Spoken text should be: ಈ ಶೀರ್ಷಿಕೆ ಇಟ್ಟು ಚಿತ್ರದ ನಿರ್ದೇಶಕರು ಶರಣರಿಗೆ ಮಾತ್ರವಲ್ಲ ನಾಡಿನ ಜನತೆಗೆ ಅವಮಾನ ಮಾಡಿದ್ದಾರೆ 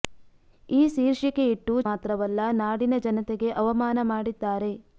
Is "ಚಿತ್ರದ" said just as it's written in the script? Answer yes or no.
no